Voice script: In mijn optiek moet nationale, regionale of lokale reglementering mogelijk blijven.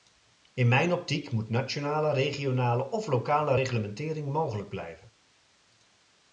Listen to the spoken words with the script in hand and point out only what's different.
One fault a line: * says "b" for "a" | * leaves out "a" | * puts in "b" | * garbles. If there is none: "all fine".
all fine